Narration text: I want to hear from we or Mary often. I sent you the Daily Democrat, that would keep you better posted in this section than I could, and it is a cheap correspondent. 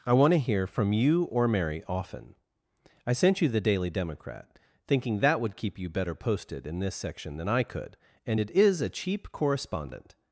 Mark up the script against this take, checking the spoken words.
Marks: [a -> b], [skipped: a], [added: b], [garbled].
I want to hear from [we -> you] or Mary often. I sent you the Daily Democrat, [added: thinking] that would keep you better posted in this section than I could, and it is a cheap correspondent.